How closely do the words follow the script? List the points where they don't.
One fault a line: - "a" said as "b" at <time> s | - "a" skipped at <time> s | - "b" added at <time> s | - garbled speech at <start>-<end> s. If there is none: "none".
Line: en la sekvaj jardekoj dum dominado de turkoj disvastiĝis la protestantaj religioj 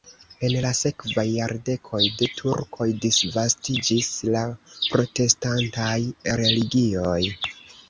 - "dum dominado" skipped at 2.0 s